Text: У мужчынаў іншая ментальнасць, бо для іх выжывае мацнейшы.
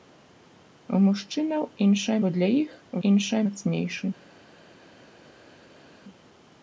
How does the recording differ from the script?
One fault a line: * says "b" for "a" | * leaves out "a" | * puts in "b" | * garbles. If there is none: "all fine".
* leaves out "ментальнасць"
* says "іншая" for "выжывае"